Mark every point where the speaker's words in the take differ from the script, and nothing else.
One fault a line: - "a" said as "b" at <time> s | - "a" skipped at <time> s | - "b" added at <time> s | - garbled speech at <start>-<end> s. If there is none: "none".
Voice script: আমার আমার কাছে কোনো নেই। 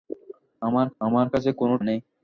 none